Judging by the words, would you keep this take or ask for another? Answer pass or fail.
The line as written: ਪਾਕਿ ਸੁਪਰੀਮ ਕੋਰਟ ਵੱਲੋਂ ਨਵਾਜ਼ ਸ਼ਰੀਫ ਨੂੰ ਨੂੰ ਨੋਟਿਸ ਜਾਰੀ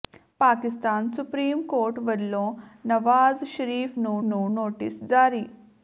pass